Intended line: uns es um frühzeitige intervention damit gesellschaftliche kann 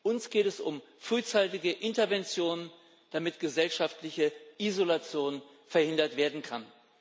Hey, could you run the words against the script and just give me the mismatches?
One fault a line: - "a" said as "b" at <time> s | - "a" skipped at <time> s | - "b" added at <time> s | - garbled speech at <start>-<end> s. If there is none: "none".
- "geht" added at 0.3 s
- "isolation verhindert werden" added at 4.6 s